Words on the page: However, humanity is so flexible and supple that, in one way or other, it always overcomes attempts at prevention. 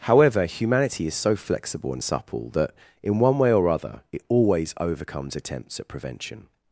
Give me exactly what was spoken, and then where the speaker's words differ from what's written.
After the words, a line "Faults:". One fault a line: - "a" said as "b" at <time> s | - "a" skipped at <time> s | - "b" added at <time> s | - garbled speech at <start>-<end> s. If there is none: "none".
However, humanity is so flexible and supple that, in one way or other, it always overcomes attempts at prevention.
Faults:
none